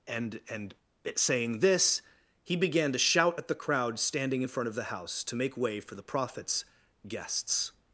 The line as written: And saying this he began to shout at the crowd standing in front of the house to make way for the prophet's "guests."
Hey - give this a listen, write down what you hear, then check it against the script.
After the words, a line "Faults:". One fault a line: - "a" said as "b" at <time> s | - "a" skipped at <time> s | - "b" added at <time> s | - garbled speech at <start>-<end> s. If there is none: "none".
And and saying this he began to shout at the crowd standing in front of the house to make way for the prophet's "guests."
Faults:
- "and" added at 0.5 s